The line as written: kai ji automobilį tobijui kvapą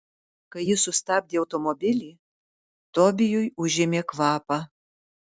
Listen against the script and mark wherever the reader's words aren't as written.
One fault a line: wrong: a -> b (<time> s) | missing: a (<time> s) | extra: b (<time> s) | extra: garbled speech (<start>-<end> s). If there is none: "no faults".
extra: sustabdė (0.8 s)
extra: užėmė (3.7 s)